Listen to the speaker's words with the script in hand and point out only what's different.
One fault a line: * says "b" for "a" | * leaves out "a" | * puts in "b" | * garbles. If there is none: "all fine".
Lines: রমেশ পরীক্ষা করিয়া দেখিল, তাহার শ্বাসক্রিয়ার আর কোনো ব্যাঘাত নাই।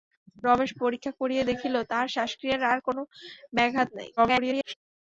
* garbles